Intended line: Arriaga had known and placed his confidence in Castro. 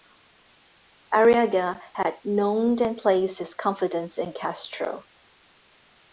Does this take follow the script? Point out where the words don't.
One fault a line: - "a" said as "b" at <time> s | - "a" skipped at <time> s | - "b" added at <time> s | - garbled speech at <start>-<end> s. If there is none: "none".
none